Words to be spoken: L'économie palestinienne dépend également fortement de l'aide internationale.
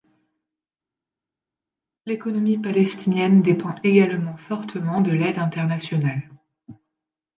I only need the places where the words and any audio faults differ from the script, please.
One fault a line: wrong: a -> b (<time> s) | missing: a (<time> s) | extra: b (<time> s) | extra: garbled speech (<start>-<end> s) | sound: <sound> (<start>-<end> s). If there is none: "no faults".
no faults